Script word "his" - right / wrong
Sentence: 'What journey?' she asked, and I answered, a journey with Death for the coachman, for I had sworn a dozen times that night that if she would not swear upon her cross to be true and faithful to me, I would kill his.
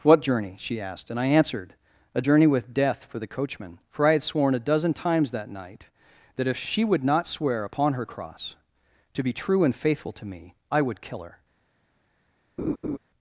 wrong